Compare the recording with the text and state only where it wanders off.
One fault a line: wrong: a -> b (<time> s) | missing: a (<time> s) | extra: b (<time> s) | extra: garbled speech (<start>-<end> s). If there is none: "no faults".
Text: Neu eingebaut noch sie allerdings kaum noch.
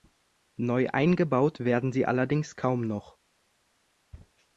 wrong: noch -> werden (1.6 s)